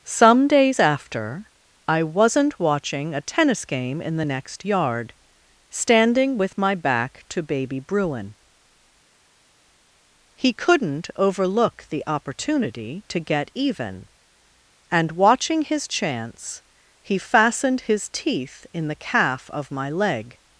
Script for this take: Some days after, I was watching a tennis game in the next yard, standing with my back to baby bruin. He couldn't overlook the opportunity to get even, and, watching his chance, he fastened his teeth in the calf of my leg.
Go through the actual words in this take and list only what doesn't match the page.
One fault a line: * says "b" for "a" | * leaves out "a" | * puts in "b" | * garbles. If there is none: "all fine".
* says "wasn't" for "was"